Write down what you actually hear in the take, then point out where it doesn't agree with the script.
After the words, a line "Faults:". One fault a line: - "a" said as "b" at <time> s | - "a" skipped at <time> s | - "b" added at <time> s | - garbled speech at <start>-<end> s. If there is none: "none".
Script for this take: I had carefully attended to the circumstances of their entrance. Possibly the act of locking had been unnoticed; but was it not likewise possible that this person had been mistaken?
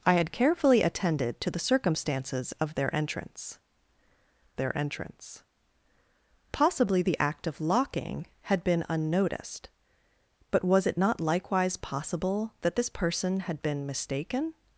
I had carefully attended to the circumstances of their entrance their entrance. Possibly the act of locking had been unnoticed; but was it not likewise possible that this person had been mistaken?
Faults:
- "their entrance" added at 4.6 s